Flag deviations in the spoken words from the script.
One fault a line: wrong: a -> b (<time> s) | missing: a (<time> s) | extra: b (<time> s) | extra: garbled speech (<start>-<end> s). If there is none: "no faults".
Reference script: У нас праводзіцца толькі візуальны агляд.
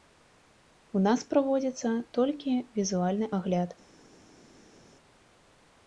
no faults